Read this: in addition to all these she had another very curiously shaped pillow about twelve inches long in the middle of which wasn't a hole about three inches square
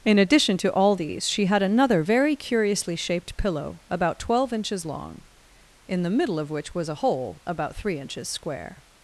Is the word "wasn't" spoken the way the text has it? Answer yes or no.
no